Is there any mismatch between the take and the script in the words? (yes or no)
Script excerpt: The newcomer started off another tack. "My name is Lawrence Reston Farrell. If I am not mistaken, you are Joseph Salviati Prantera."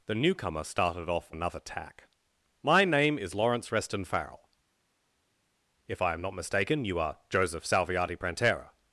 no